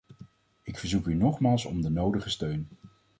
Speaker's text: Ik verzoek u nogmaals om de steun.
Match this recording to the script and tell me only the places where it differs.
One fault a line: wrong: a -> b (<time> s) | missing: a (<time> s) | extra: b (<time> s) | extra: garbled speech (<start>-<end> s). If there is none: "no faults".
extra: nodige (1.9 s)